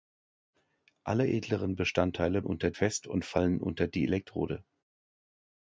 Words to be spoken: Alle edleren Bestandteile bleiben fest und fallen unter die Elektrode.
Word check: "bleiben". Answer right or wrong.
wrong